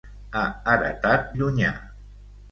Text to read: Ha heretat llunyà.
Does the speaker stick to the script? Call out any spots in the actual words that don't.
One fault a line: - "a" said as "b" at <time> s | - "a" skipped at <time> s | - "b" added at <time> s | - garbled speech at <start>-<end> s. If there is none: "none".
none